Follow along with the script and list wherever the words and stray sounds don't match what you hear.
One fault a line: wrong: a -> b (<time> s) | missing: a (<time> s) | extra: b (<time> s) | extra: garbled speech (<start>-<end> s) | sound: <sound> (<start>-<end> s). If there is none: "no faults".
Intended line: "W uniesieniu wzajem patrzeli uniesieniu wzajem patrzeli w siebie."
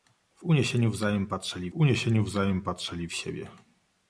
no faults